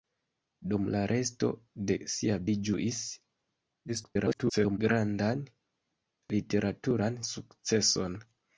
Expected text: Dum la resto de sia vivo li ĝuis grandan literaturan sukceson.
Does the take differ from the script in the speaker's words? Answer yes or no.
yes